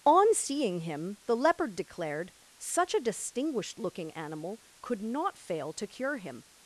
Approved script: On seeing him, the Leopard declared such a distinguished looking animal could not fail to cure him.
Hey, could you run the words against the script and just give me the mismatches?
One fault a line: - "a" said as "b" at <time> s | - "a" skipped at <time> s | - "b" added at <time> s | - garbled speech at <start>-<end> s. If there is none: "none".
none